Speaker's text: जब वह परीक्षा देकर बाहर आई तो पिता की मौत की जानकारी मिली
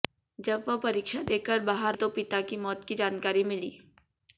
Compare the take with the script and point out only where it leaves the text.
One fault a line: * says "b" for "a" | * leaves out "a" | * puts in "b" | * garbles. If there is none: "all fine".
* leaves out "आई"